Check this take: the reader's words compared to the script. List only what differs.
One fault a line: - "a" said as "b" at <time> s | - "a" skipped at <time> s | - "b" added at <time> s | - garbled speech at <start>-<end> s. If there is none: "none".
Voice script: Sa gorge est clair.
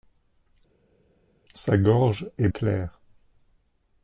none